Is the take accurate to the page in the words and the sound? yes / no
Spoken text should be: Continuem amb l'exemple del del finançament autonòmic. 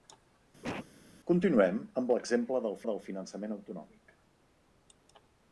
no